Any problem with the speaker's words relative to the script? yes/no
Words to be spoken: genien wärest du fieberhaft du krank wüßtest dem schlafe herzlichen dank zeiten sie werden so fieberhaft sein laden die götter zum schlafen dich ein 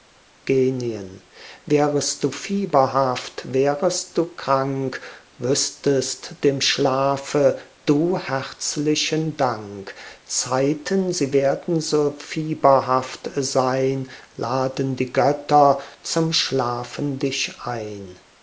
yes